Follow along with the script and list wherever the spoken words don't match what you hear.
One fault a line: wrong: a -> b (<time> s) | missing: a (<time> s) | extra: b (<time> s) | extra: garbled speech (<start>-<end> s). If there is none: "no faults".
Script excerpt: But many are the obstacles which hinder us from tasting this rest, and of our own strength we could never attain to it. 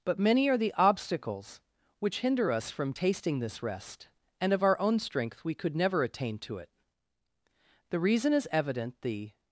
extra: The reason is evident the (7.9 s)